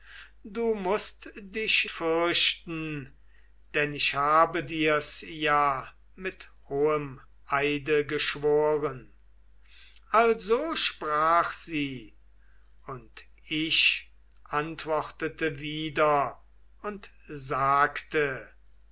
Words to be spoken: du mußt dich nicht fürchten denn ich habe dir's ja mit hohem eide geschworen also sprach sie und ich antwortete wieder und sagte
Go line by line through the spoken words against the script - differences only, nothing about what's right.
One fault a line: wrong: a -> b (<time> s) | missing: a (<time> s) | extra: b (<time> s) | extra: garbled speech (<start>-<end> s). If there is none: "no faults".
missing: nicht (1.9 s)